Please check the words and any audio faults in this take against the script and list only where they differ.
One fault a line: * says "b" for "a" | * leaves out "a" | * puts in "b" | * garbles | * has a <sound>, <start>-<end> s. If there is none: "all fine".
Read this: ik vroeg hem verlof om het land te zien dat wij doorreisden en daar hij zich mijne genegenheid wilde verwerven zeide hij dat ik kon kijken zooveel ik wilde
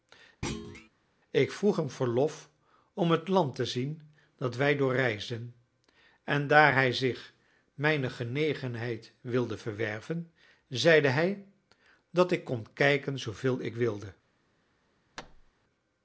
* has a thud, 0.4-0.9 s
* has a thud, 15.2-15.5 s